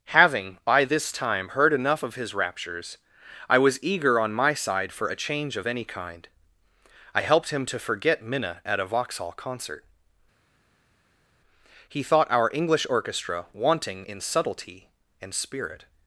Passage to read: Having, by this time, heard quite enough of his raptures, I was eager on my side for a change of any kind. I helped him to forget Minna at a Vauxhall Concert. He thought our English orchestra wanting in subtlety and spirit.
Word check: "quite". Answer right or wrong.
wrong